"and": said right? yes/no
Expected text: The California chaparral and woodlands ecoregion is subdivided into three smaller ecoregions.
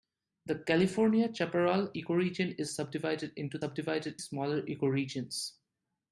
no